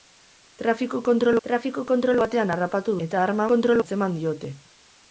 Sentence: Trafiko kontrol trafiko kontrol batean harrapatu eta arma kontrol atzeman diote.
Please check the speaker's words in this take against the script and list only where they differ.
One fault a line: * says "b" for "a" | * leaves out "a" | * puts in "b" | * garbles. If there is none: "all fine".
all fine